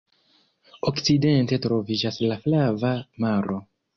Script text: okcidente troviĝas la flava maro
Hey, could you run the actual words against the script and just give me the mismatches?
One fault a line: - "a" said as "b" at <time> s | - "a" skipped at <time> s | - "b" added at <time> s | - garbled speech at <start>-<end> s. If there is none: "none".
none